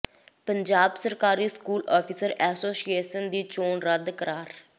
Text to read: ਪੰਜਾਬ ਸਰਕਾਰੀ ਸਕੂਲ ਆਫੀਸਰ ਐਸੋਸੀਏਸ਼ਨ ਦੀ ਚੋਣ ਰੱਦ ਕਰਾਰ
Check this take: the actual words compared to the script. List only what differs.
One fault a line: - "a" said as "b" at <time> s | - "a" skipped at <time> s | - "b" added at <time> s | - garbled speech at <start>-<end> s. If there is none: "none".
none